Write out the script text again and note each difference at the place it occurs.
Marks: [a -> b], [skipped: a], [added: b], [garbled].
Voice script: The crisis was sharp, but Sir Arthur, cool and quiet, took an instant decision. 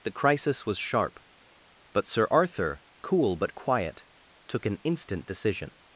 The crisis was sharp, but Sir Arthur, cool [and -> but] quiet, took an instant decision.